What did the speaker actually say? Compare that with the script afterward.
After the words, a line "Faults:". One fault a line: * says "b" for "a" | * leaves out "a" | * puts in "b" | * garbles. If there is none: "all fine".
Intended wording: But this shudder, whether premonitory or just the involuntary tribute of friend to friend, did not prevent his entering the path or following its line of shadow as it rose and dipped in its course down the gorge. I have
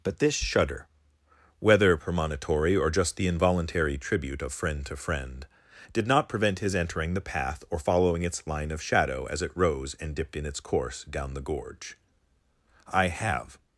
But this shudder, whether premonitory or just the involuntary tribute of friend to friend, did not prevent his entering the path or following its line of shadow as it rose and dipped in its course down the gorge. I have
Faults:
all fine